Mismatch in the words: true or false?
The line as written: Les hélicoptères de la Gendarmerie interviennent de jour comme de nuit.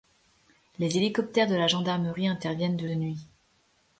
true